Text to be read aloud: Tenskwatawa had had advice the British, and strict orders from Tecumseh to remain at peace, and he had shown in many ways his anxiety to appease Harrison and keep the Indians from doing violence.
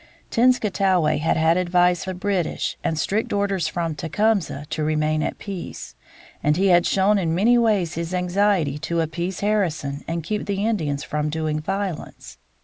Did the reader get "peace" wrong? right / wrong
right